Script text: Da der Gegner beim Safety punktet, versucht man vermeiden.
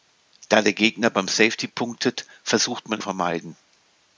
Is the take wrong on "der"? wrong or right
right